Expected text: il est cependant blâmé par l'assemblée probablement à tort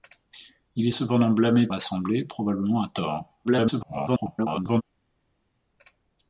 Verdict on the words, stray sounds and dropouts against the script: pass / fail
fail